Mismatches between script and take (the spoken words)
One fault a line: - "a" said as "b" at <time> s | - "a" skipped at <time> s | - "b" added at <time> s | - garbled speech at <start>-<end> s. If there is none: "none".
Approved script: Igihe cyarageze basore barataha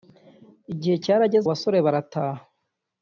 none